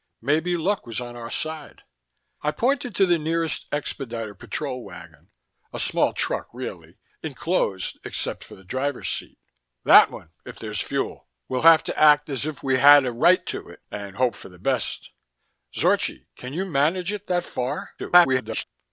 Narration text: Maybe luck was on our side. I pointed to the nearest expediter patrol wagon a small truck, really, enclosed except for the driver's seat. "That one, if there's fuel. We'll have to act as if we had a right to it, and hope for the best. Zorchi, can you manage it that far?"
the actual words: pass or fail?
fail